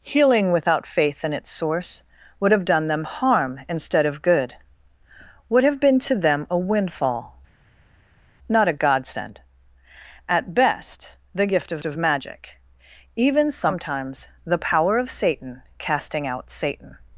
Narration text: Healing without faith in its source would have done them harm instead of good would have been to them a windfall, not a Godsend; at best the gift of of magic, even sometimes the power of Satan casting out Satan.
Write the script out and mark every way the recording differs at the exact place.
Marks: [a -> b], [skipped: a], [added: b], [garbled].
Healing without faith in its source would have done them harm instead of good would have been to them a windfall, not a Godsend; at best the gift of of magic, even sometimes the power of Satan casting out Satan.